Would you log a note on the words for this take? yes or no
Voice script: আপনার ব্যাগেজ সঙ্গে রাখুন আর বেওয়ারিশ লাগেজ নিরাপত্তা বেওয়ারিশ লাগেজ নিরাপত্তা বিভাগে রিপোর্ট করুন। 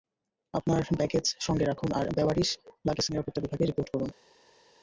yes